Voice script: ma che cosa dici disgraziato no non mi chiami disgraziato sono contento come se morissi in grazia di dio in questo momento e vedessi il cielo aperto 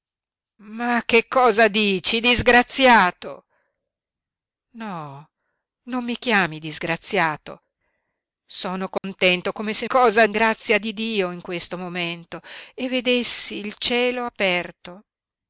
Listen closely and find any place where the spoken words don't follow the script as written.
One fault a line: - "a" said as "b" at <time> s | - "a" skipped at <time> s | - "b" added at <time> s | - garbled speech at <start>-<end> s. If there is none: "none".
- "morissi" said as "cosa" at 9.9 s